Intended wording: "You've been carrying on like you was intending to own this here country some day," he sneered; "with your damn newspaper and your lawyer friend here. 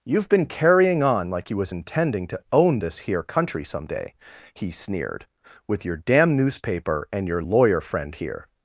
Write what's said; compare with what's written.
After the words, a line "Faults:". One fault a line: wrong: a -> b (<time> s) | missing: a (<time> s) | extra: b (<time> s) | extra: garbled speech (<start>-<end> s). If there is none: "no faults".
"You've been carrying on like you was intending to own this here country some day," he sneered; "with your damn newspaper and your lawyer friend here.
Faults:
no faults